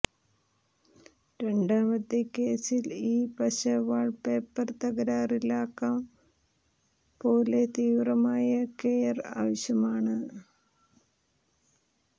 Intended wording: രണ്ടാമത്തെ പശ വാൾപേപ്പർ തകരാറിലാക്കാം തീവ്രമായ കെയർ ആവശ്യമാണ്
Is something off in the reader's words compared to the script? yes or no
yes